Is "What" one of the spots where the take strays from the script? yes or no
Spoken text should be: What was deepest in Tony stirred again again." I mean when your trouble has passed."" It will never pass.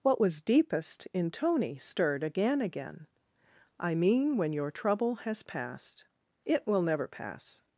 no